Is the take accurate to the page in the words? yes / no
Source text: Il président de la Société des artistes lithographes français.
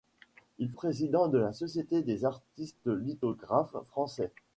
yes